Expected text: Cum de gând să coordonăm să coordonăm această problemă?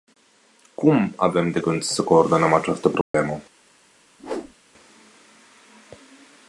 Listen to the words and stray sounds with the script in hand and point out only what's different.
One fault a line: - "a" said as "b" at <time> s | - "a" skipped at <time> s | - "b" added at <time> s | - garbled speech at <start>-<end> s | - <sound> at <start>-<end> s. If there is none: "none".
- "avem" added at 1.1 s
- "să coordonăm" skipped at 2.5 s
- dropout at 3.0-3.1 s
- whoosh at 4.2-4.5 s